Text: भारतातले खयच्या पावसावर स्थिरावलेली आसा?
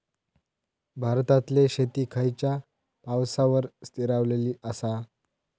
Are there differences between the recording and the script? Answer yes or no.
yes